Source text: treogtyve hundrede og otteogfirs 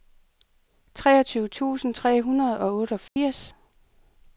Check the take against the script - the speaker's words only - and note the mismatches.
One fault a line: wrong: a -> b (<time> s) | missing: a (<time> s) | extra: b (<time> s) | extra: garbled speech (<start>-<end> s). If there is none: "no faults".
extra: tusind tre (1.5 s)